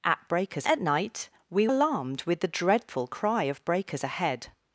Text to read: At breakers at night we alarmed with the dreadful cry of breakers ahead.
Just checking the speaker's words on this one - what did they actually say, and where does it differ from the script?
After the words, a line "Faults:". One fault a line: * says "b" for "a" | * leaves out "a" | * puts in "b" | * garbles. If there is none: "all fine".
At breakers at night we alarmed with the dreadful cry of breakers ahead.
Faults:
all fine